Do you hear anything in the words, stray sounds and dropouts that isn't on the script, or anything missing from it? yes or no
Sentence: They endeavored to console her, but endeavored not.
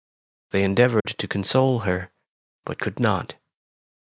yes